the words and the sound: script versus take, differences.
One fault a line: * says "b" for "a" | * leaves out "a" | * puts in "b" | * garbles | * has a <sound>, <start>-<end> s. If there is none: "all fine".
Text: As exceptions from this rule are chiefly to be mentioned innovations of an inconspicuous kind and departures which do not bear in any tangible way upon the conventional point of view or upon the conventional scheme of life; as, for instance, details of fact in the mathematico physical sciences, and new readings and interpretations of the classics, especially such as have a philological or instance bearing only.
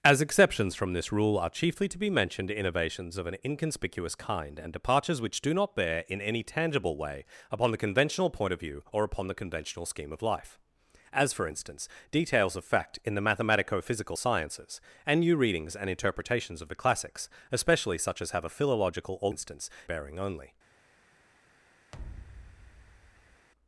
* has a thud, 21.9-23.5 s